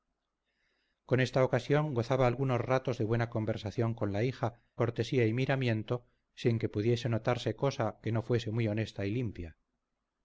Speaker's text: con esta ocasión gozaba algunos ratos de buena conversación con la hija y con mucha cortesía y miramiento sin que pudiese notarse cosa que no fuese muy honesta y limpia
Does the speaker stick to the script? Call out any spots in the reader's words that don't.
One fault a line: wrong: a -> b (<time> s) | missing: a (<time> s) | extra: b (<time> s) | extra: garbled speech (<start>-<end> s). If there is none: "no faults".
missing: y con mucha (4.6 s)